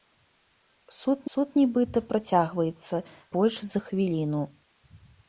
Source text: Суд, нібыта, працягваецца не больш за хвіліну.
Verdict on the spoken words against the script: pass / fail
fail